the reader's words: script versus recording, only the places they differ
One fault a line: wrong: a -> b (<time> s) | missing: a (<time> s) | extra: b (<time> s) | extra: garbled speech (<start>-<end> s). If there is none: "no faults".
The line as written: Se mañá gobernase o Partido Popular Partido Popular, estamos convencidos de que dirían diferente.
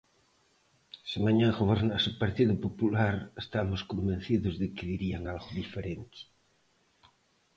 missing: Partido Popular (3.1 s)
extra: algo (5.3 s)